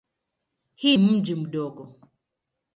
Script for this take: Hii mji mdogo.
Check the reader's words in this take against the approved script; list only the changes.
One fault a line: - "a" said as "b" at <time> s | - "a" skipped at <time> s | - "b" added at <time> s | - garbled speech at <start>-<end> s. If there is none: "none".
none